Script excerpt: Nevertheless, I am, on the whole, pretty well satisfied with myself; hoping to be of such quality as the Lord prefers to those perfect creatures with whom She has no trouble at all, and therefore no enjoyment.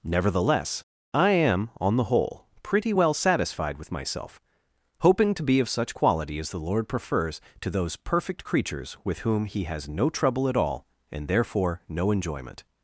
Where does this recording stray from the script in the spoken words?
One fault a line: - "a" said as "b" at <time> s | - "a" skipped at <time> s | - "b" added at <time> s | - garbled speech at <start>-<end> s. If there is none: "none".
- "She" said as "He" at 9.4 s